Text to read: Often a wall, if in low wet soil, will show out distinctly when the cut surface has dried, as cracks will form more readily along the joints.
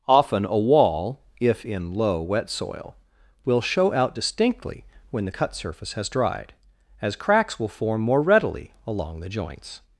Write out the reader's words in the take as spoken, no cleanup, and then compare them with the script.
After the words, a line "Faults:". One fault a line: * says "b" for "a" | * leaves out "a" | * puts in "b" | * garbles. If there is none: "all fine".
Often a wall, if in low wet soil, will show out distinctly when the cut surface has dried, as cracks will form more readily along the joints.
Faults:
all fine